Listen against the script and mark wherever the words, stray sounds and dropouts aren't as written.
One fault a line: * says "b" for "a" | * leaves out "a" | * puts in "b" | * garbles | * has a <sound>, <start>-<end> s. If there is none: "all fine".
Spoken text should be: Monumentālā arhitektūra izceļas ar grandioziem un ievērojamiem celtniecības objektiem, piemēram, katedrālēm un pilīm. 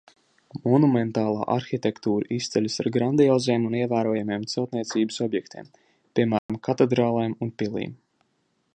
* has a dropout, 6.4-6.5 s